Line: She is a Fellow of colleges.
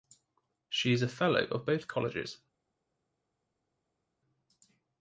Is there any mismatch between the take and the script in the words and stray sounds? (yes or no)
yes